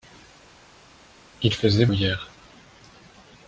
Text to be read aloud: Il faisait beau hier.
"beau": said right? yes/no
no